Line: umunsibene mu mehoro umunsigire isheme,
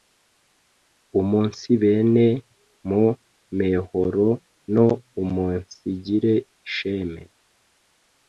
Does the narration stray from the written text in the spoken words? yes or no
yes